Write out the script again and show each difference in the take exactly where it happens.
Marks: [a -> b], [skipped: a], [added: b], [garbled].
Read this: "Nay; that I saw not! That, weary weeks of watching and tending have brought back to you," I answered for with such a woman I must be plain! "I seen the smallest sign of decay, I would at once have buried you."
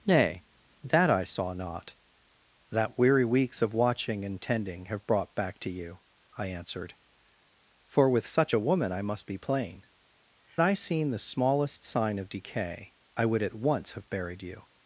"Nay; that I saw not! That, weary weeks of watching and tending have brought back to you," I answered for with such a woman I must be plain! "I seen the smallest sign of decay, I would at once have buried you."